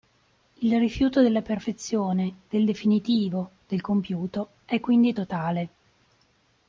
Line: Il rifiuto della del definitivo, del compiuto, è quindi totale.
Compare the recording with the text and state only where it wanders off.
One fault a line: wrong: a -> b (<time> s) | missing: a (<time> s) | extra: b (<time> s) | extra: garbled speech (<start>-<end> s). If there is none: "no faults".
extra: perfezione (1.4 s)